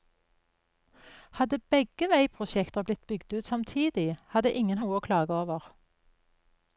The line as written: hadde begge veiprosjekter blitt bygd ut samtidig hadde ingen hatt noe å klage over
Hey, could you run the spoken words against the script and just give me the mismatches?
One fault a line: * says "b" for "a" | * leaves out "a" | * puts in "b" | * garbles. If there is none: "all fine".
* leaves out "hatt"